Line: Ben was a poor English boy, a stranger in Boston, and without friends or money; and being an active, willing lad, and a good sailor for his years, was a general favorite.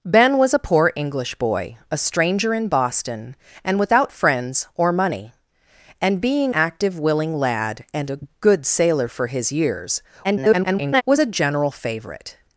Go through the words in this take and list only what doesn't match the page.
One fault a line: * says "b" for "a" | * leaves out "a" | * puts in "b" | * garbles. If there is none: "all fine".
* leaves out "an"
* garbles